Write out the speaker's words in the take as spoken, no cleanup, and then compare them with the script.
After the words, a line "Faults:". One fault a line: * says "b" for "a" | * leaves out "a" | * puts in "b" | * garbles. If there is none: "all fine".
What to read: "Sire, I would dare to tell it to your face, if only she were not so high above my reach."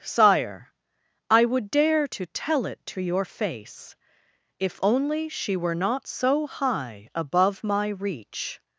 "Sire, I would dare to tell it to your face, if only she were not so high above my reach."
Faults:
all fine